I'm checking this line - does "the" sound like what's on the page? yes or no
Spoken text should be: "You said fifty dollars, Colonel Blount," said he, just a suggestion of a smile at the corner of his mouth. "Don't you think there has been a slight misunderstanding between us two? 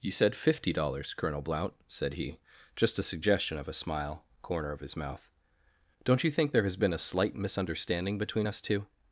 no